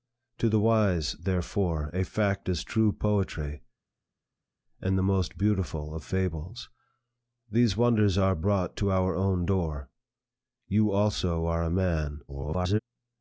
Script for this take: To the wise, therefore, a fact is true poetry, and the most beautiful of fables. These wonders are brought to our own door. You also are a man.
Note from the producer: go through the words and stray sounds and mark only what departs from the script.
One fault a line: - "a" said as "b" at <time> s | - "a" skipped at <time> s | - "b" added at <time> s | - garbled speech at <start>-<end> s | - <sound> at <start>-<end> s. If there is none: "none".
- garbled speech at 12.3-12.8 s